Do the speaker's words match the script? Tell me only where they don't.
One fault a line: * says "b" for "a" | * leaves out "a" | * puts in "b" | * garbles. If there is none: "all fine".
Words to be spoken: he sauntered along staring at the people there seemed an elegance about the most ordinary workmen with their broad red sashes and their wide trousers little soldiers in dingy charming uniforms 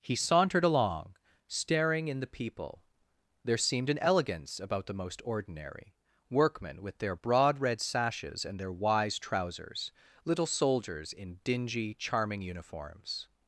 * says "in" for "at"
* says "wise" for "wide"